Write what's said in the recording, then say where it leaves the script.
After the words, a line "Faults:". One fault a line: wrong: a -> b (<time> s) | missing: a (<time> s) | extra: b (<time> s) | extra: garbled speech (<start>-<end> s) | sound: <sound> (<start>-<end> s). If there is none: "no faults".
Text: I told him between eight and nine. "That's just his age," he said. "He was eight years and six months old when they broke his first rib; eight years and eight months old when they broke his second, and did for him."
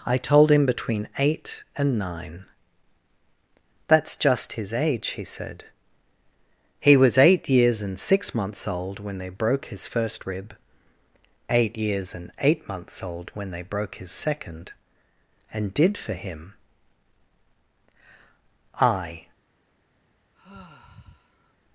I told him between eight and nine. "That's just his age," he said. "He was eight years and six months old when they broke his first rib; eight years and eight months old when they broke his second, and did for him." I
Faults:
extra: I (18.8 s)
sound: sigh (20.3-21.6 s)